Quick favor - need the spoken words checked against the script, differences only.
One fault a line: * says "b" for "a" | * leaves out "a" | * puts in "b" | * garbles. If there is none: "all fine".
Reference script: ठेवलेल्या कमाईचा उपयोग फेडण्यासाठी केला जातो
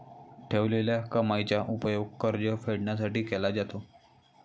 * puts in "कर्ज"